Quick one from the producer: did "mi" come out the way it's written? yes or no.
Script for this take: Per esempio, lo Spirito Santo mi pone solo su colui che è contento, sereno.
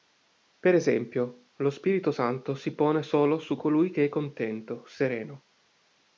no